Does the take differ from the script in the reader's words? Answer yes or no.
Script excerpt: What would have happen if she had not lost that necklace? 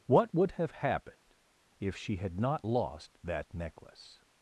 yes